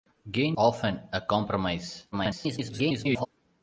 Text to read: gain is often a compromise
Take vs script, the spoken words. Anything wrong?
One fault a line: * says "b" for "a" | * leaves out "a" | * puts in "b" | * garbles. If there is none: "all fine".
* leaves out "is"
* garbles